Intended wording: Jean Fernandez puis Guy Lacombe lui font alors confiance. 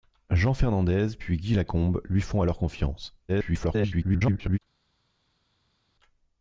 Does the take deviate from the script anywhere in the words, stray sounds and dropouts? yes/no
yes